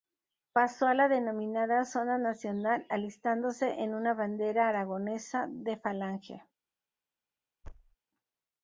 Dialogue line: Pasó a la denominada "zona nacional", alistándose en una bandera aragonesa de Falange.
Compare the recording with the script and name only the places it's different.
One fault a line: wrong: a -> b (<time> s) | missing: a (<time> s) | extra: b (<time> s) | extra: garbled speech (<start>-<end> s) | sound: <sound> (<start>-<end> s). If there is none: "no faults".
sound: thud (7.6-8.0 s)